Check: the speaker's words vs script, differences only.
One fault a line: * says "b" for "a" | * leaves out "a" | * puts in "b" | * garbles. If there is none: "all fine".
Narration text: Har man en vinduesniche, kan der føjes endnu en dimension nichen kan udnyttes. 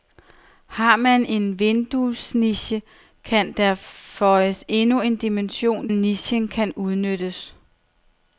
all fine